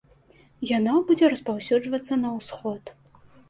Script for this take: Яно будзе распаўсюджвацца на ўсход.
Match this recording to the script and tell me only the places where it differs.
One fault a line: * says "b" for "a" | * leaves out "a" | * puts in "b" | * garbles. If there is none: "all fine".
all fine